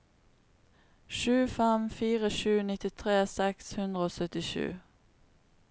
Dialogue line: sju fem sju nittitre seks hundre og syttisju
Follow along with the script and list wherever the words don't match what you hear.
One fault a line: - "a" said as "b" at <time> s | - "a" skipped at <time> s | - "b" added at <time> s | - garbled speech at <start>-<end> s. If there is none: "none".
- "fire" added at 2.0 s